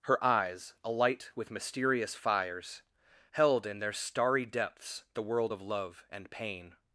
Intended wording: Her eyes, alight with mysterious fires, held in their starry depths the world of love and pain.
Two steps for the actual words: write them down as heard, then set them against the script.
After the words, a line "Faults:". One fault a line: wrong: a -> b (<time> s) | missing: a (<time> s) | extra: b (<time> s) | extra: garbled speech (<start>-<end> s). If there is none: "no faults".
Her eyes, alight with mysterious fires, held in their starry depths the world of love and pain.
Faults:
no faults